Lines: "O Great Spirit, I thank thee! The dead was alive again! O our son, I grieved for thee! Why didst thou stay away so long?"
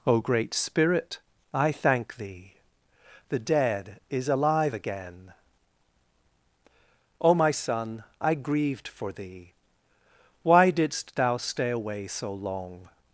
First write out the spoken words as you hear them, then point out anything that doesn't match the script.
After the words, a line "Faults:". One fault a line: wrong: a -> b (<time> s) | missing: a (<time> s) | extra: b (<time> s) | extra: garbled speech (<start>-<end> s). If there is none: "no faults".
"O Great Spirit, I thank thee! The dead is alive again! O my son, I grieved for thee! Why didst thou stay away so long?"
Faults:
wrong: was -> is (4.1 s)
wrong: our -> my (7.3 s)